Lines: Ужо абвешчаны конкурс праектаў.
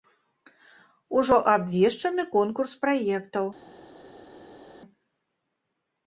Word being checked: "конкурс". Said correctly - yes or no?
yes